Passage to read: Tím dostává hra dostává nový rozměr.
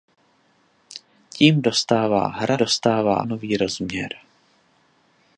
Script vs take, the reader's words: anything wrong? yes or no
no